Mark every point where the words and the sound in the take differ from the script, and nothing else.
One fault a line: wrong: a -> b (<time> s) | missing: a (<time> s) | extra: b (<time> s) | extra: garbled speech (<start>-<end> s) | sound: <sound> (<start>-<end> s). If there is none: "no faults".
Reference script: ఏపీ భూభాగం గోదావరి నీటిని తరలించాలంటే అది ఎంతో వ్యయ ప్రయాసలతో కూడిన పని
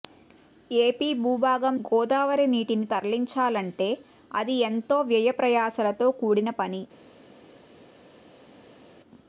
no faults